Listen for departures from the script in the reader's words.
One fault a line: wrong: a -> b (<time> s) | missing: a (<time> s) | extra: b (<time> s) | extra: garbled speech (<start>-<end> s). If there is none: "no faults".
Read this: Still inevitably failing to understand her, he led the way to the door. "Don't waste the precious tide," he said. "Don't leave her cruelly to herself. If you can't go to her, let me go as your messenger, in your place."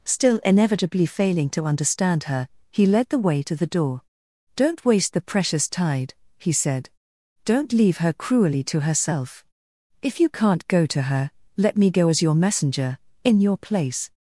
no faults